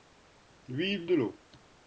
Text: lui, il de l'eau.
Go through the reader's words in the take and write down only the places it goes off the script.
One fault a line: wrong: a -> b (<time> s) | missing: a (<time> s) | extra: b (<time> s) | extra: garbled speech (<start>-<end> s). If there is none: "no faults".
no faults